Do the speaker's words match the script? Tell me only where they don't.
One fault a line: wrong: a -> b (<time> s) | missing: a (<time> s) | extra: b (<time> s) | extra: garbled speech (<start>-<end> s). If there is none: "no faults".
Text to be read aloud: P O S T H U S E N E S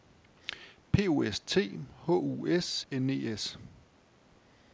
missing: E (2.9 s)